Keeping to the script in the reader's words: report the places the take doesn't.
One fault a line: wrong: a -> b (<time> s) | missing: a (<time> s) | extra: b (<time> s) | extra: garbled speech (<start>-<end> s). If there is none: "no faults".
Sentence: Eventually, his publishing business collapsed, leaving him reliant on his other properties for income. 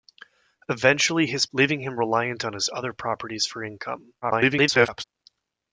missing: publishing business collapsed (1.4 s)
extra: garbled speech (4.2-5.0 s)